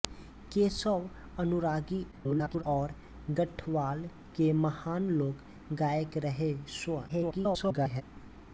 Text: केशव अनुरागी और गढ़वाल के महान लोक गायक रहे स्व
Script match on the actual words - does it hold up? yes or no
no